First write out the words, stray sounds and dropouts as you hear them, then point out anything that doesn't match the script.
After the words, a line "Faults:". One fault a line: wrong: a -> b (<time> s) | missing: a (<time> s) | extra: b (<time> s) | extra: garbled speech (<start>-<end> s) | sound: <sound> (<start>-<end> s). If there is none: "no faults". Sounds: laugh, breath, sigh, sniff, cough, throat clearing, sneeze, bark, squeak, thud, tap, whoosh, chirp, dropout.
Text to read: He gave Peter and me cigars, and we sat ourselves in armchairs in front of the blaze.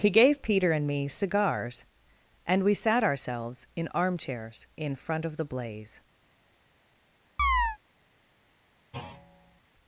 He gave Peter and me cigars, and we sat ourselves in armchairs in front of the blaze.
Faults:
sound: chirp (7.4-7.8 s)
sound: thud (8.9-9.6 s)